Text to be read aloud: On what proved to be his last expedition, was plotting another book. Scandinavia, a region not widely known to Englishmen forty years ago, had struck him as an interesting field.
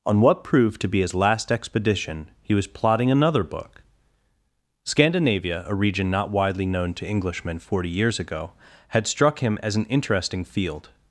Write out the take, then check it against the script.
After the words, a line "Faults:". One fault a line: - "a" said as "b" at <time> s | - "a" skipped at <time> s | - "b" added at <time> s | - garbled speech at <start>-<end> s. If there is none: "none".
On what proved to be his last expedition, he was plotting another book. Scandinavia, a region not widely known to Englishmen forty years ago, had struck him as an interesting field.
Faults:
- "he" added at 2.4 s